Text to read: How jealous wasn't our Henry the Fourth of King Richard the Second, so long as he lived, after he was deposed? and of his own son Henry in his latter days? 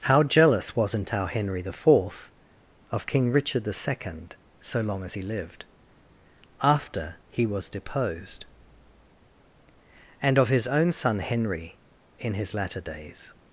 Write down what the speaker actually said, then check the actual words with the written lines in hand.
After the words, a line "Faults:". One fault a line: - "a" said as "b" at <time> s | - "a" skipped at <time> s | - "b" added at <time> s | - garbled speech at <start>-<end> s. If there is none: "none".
How jealous wasn't our Henry the Fourth of King Richard the Second, so long as he lived, after he was deposed? and of his own son Henry in his latter days?
Faults:
none